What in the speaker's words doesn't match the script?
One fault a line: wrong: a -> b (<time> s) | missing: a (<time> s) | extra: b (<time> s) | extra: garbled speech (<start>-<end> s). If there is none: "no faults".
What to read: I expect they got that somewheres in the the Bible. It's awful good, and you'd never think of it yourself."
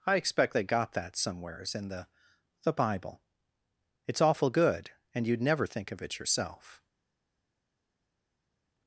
no faults